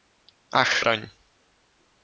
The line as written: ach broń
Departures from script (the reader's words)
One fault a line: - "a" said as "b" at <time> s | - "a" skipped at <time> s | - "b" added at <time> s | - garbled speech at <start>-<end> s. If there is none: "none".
none